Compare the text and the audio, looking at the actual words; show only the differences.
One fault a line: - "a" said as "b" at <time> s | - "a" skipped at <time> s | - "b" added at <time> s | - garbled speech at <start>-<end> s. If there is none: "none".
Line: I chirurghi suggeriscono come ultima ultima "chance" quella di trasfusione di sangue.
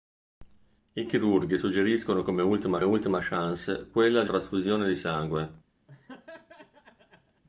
none